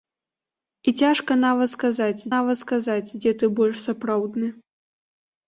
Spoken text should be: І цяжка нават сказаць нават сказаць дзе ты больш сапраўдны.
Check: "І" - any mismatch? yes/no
no